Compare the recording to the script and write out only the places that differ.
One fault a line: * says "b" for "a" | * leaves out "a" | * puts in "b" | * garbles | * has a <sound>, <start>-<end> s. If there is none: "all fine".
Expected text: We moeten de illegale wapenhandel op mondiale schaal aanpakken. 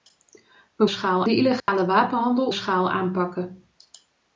* says "schaal" for "moeten"
* has a dropout, 1.6-1.7 s
* leaves out "op mondiale"